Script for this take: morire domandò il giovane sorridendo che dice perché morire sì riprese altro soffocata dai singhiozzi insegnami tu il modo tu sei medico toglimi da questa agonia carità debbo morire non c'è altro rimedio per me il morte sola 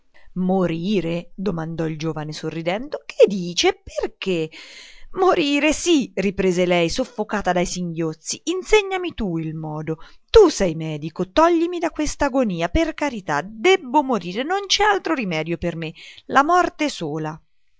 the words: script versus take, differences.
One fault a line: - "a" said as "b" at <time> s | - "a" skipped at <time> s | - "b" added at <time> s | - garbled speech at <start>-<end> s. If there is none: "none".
- "altro" said as "lei" at 6.7 s
- "per" added at 12.7 s
- "il" said as "la" at 16.3 s